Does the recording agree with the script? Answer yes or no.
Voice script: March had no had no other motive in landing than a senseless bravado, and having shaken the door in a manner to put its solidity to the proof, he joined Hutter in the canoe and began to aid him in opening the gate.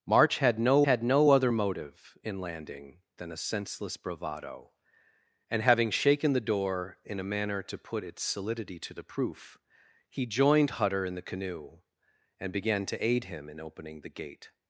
yes